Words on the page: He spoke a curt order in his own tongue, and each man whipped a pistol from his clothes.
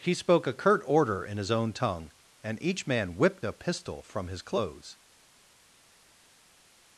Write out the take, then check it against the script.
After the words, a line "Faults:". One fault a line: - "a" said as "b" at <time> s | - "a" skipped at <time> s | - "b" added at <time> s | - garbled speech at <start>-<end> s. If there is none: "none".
He spoke a curt order in his own tongue, and each man whipped a pistol from his clothes.
Faults:
none